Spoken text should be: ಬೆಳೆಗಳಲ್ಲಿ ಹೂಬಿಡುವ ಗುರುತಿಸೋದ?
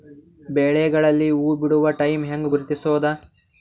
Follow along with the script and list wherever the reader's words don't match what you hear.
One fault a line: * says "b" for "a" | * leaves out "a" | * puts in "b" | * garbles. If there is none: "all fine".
* puts in "ಟೈಮ್ ಹೆಂಗ"